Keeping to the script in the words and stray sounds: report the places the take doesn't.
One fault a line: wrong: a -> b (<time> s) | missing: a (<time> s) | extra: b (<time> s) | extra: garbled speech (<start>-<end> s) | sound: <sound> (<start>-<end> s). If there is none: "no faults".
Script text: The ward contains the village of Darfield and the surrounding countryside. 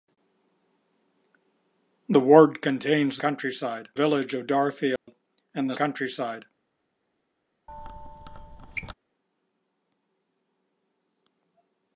wrong: the -> countryside (3.2 s)
sound: dropout (5.0-5.1 s)
missing: surrounding (5.8 s)
sound: squeak (7.7-8.9 s)